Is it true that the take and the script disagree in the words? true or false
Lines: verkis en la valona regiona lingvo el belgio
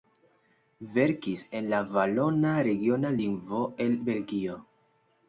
false